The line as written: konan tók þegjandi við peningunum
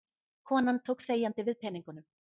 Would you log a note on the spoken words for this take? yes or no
no